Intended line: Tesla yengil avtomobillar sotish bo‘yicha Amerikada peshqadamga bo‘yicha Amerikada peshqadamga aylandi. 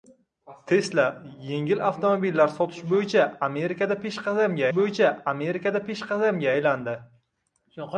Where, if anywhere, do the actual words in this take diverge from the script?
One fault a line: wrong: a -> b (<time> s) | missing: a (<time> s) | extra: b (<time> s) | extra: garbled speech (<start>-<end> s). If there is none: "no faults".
no faults